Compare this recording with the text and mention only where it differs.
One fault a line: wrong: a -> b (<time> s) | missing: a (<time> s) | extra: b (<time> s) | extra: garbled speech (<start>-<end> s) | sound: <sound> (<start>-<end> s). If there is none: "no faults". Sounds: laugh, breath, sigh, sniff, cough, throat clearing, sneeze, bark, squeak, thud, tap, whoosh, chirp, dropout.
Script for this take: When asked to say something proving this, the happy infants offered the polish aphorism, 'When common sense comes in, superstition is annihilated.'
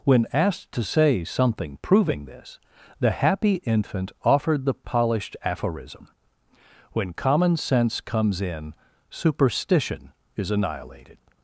wrong: infants -> infant (3.6 s)
wrong: polish -> polished (4.7 s)